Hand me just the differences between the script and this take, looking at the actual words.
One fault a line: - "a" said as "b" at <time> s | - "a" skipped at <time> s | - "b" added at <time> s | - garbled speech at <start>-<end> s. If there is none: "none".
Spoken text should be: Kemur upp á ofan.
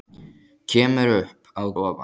none